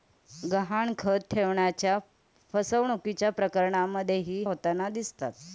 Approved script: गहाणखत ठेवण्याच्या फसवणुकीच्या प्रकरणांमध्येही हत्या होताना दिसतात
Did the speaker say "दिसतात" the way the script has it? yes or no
yes